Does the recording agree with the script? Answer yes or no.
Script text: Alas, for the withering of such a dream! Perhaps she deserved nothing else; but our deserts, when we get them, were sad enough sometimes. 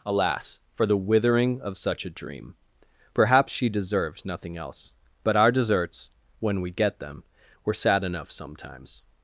yes